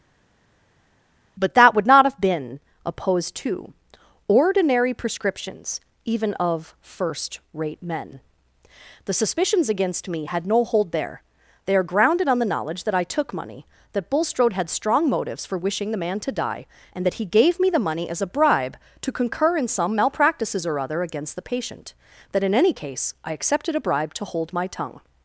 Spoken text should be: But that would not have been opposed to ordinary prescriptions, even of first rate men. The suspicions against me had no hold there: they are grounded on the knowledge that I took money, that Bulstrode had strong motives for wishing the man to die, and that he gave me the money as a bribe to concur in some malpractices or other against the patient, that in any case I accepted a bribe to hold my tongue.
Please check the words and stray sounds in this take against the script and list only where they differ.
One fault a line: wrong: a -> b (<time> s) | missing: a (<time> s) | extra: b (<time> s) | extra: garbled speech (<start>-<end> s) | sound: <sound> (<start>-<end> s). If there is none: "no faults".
no faults